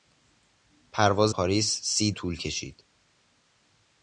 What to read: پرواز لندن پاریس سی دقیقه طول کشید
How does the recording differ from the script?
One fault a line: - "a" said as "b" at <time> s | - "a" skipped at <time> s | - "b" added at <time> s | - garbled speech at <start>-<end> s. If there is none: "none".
- "لندن" skipped at 1.4 s
- "دقیقه" skipped at 2.1 s